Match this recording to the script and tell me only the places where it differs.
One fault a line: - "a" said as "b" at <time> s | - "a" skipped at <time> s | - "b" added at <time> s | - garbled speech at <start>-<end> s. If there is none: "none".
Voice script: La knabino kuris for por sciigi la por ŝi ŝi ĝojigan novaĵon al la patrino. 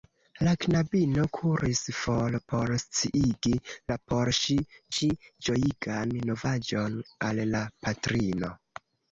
none